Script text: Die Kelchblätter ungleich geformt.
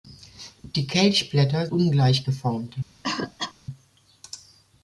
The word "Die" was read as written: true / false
true